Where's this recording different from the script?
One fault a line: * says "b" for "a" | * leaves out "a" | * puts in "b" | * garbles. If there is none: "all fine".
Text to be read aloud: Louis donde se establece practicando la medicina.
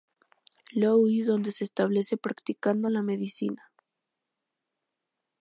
all fine